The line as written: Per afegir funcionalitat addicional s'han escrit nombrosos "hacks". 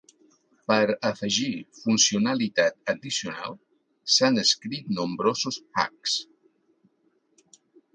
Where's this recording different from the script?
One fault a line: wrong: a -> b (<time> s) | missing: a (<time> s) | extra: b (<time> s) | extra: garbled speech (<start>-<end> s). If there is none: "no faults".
no faults